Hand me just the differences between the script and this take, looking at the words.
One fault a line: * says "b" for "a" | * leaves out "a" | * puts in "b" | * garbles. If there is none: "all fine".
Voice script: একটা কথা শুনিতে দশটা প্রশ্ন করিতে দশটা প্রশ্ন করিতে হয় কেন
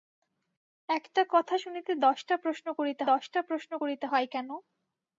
all fine